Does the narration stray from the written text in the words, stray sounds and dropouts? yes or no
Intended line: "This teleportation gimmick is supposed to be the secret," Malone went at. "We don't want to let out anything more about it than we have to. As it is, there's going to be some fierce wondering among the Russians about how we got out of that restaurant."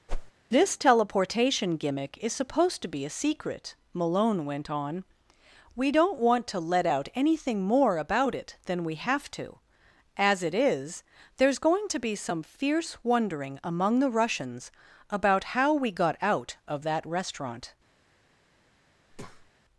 yes